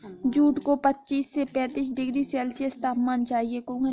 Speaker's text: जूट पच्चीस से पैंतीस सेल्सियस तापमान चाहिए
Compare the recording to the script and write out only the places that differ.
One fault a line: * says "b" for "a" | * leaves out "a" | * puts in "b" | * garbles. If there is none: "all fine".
* puts in "को"
* puts in "डिग्री"